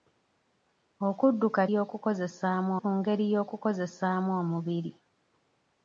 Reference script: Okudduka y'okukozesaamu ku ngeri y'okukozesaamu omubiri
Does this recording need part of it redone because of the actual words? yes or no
no